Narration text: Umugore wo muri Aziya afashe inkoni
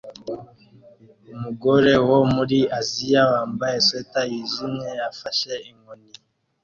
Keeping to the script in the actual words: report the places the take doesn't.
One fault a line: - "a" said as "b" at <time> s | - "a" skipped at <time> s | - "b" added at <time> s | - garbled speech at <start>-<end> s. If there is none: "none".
- "wambaye swater yijimye" added at 3.3 s